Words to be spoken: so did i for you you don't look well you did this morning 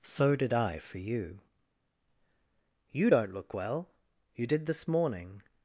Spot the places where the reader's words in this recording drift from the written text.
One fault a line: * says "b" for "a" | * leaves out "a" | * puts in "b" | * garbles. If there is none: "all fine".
all fine